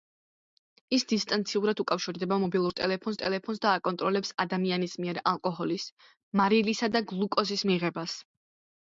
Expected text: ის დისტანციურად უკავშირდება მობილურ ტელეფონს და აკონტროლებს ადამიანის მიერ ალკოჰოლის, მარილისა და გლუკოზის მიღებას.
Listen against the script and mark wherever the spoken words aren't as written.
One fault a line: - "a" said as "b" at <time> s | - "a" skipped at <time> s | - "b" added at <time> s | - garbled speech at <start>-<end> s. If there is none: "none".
- "ტელეფონს" added at 3.2 s